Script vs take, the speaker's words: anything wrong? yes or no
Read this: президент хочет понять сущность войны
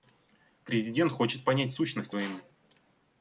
no